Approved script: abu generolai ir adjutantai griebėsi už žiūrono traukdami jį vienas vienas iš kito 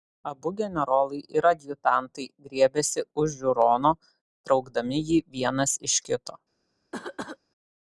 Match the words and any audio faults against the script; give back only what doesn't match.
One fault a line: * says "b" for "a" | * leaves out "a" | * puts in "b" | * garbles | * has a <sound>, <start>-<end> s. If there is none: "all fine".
* leaves out "vienas"
* has a cough, 6.9-7.4 s